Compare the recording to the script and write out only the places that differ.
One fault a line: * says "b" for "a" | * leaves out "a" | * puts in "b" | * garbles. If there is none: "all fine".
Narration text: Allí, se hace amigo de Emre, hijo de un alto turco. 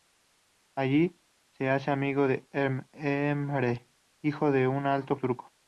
all fine